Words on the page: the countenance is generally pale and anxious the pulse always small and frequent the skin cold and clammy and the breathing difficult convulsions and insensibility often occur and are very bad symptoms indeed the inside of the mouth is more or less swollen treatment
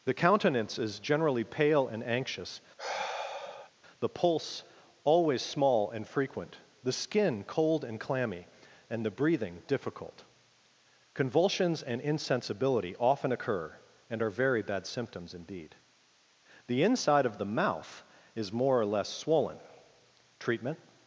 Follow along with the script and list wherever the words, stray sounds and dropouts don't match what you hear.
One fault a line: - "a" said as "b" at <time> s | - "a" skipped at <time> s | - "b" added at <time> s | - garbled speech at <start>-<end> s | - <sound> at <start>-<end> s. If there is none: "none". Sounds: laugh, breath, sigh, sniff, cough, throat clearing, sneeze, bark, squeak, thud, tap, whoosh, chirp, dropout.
- sigh at 2.8-3.7 s